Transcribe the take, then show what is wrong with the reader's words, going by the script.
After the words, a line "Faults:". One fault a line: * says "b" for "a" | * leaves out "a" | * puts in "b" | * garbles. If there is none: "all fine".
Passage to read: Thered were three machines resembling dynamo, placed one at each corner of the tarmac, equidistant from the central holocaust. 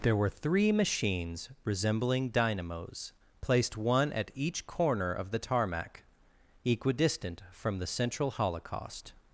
There were three machines resembling dynamos, placed one at each corner of the tarmac, equidistant from the central holocaust.
Faults:
* says "There" for "Thered"
* says "dynamos" for "dynamo"